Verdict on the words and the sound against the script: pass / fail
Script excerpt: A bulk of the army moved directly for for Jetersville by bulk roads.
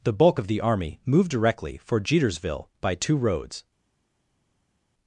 fail